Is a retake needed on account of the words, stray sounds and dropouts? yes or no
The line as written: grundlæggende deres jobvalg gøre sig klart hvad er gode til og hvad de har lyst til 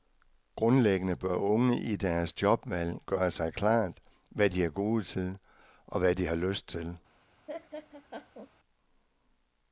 yes